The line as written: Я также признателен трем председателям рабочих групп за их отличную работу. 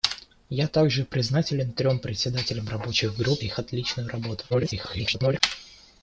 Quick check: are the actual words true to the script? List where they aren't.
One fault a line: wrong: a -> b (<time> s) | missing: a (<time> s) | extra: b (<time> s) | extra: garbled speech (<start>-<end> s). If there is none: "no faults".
missing: за (3.4 s)
extra: garbled speech (4.5-5.4 s)